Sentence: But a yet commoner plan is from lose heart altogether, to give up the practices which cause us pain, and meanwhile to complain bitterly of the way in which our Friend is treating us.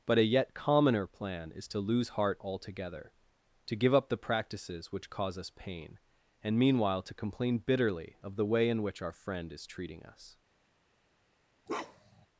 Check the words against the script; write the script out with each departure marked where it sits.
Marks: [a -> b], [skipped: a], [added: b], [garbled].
But a yet commoner plan is [from -> to] lose heart altogether, to give up the practices which cause us pain, and meanwhile to complain bitterly of the way in which our Friend is treating us.